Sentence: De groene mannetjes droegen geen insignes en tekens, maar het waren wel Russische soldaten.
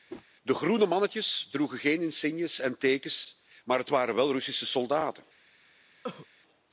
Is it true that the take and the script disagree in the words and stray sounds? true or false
true